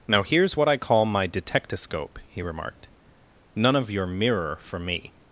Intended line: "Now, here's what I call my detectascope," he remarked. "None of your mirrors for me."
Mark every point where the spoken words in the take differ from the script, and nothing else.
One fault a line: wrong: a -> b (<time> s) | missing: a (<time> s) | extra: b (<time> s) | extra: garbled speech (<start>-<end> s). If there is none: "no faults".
wrong: mirrors -> mirror (4.1 s)